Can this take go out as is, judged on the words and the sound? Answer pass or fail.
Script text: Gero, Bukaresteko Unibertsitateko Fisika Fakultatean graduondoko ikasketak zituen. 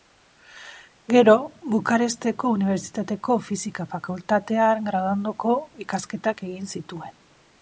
fail